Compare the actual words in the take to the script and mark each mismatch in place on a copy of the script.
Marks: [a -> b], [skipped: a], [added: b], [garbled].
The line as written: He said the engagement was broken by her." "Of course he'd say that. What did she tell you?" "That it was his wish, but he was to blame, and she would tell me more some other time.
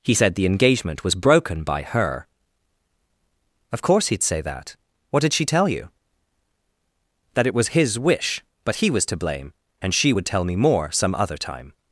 He said the engagement was broken by her." "Of course he'd say that. What did she tell you?" "That it was his wish, but he was to blame, and she would tell me more some other time.